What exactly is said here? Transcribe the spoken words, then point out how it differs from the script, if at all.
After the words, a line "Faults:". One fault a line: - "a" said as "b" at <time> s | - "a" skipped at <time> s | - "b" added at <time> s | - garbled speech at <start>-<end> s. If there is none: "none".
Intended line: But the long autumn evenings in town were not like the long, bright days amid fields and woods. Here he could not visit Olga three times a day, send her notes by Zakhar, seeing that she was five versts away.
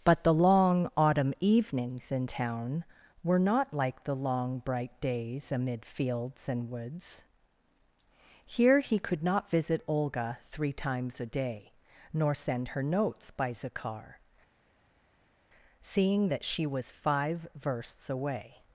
But the long autumn evenings in town were not like the long, bright days amid fields and woods. Here he could not visit Olga three times a day, nor send her notes by Zakhar, seeing that she was five versts away.
Faults:
- "nor" added at 12.1 s